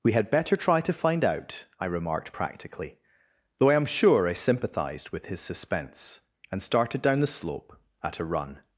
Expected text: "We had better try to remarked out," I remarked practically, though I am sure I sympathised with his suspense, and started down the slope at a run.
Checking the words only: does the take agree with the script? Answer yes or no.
no